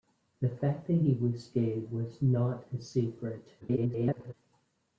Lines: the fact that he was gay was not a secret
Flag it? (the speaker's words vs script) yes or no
yes